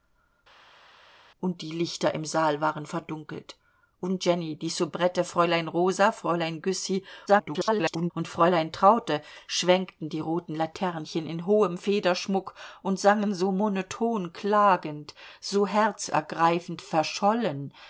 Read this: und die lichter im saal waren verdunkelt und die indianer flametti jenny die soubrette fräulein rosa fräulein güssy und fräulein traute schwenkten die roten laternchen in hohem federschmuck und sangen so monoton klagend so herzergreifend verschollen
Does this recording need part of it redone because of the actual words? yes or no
yes